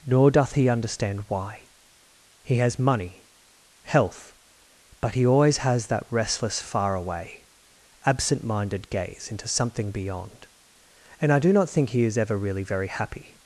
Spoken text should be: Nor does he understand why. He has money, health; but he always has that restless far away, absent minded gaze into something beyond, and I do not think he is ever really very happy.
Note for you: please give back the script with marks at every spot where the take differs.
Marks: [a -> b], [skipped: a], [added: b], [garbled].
Nor [does -> doth] he understand why. He has money, health; but he always has that restless far away, absent minded gaze into something beyond, and I do not think he is ever really very happy.